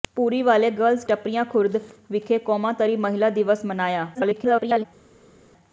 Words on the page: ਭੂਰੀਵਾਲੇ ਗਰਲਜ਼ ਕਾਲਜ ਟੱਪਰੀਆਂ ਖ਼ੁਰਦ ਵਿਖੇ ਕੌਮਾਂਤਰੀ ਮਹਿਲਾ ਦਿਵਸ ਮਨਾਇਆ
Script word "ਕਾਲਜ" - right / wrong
wrong